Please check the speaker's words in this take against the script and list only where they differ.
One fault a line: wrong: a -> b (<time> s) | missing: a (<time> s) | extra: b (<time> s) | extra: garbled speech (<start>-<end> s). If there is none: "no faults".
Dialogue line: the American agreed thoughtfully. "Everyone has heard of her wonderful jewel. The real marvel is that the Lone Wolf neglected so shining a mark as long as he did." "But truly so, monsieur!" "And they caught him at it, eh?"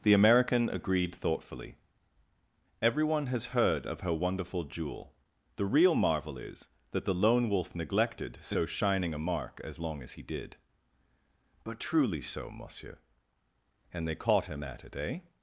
no faults